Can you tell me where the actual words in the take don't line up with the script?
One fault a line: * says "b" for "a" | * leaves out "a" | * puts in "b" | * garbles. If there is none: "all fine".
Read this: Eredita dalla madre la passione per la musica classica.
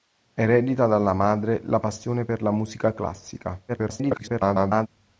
* garbles